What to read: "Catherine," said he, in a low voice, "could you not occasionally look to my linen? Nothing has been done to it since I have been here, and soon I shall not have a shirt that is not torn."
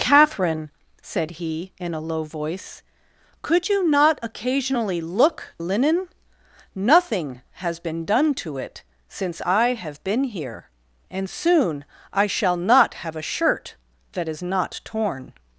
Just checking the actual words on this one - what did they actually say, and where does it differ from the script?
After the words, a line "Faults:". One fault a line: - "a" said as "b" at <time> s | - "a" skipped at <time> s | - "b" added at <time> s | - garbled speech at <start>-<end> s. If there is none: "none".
"Catherine," said he, in a low voice, "could you not occasionally look linen? Nothing has been done to it since I have been here, and soon I shall not have a shirt that is not torn."
Faults:
- "to my" skipped at 5.5 s